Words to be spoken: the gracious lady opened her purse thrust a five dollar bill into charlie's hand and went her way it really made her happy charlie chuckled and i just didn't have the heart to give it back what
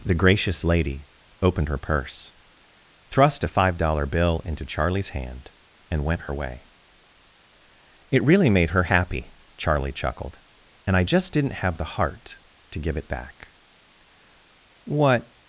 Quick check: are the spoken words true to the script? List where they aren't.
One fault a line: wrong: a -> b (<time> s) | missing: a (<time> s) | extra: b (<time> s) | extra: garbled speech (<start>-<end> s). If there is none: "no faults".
no faults